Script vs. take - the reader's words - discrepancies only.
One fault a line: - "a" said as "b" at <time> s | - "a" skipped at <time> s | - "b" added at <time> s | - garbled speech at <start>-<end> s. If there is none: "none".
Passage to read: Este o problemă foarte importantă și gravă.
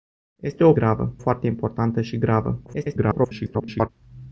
- "problemă" said as "gravă" at 0.7 s
- garbled speech at 2.7-3.9 s